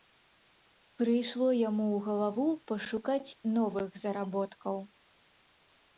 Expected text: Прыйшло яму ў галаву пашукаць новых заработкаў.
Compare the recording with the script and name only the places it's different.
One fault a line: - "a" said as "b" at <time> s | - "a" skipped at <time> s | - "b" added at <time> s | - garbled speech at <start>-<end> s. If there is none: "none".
none